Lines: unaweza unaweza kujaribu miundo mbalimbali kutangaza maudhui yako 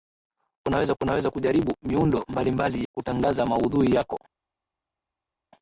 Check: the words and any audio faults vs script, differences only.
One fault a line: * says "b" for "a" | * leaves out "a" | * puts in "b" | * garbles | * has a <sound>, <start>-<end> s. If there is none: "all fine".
all fine